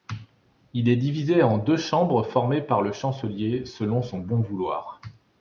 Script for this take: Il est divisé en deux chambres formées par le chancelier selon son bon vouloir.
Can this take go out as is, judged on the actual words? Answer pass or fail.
pass